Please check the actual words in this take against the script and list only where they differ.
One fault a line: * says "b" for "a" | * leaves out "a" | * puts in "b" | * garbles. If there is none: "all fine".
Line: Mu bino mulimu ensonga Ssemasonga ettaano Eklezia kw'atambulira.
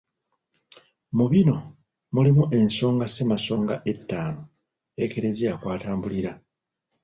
all fine